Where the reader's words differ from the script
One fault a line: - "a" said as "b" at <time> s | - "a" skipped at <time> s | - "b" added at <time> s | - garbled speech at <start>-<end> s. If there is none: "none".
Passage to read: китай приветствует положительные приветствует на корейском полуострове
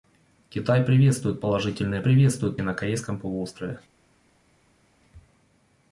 none